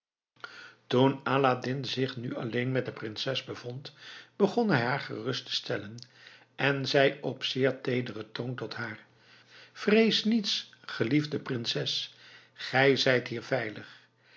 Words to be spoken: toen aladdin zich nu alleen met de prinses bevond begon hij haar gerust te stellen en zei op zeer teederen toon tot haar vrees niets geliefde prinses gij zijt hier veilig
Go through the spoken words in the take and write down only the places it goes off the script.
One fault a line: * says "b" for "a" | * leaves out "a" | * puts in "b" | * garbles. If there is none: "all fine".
all fine